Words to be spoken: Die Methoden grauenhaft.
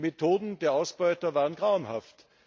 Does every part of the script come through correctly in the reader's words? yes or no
no